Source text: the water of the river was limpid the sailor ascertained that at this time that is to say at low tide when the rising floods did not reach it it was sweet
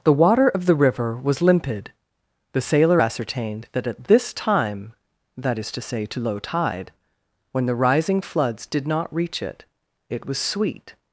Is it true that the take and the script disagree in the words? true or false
true